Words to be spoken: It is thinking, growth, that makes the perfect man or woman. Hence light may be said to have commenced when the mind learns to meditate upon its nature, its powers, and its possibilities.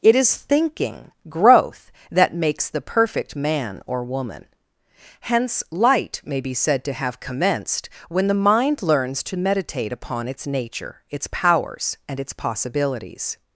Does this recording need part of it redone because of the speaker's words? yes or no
no